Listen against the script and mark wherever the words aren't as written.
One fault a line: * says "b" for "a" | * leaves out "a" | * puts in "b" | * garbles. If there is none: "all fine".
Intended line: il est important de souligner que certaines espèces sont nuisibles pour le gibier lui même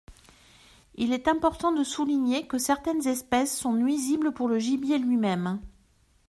all fine